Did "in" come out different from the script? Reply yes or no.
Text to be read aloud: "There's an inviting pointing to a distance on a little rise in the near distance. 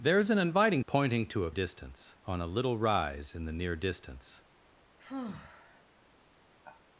no